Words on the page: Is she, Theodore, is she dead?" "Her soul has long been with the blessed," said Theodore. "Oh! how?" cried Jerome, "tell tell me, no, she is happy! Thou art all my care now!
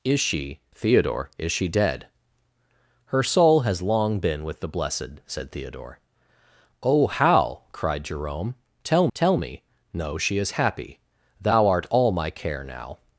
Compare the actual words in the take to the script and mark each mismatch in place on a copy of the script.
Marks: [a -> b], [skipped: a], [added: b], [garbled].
Is she, Theodore, is she dead?" "Her soul has long been with the blessed," said Theodore. "Oh! how?" cried Jerome, "tell tell me, no, she is happy! Thou art all my care now!